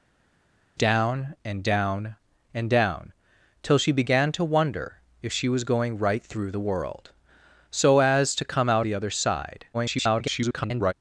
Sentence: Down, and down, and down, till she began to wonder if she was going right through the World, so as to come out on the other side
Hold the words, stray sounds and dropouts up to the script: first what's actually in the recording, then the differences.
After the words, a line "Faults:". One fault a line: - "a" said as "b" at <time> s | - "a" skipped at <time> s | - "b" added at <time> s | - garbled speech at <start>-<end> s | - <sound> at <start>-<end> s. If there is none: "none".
Down, and down, and down, till she began to wonder if she was going right through the World, so as to come out the other side [garbled]
Faults:
- "on" skipped at 8.9 s
- garbled speech at 9.7-10.9 s